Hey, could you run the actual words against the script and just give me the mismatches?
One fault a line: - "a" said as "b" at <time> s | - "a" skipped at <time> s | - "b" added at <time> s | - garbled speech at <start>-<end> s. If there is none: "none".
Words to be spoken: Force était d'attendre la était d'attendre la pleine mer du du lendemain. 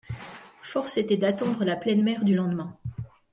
- "était d'attendre la" skipped at 1.8 s
- "du" skipped at 2.3 s